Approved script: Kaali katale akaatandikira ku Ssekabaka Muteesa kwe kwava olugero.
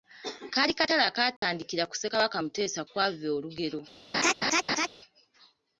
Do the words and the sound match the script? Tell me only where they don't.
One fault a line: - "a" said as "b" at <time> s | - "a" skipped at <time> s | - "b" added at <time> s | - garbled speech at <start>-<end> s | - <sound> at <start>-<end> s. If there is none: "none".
- dropout at 1.4-1.4 s
- "kwe" skipped at 2.8 s
- laugh at 4.1-4.9 s